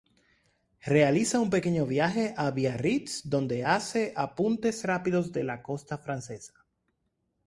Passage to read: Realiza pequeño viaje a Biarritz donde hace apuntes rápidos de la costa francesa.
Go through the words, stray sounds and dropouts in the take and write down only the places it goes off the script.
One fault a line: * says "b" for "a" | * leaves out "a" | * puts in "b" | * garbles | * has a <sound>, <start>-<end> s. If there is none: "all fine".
* puts in "un"